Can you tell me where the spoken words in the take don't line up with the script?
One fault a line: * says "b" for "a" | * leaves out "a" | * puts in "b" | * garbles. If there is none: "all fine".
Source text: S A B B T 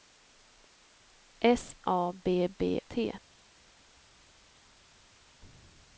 all fine